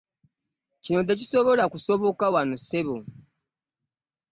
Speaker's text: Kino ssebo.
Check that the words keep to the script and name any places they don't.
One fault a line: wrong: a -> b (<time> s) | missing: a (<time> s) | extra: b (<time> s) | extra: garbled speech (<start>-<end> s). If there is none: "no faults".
extra: tekisobola kusoboka wano (1.1 s)